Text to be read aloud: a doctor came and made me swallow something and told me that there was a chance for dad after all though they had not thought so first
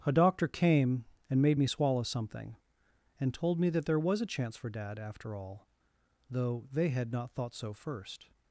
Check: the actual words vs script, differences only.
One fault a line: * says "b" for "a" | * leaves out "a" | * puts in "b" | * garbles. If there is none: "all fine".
all fine